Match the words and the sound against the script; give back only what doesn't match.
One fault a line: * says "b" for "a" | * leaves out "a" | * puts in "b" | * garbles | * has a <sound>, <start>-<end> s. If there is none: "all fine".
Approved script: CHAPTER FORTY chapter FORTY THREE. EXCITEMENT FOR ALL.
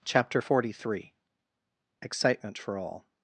* leaves out "chapter FORTY"